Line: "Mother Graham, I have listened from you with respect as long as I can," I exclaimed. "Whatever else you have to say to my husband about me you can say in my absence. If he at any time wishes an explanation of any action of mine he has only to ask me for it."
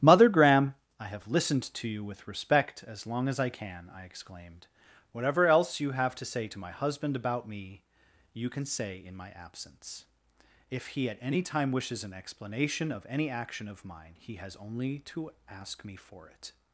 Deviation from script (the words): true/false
true